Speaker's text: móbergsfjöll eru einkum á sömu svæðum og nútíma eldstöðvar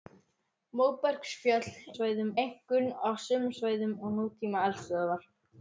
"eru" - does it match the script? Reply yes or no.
no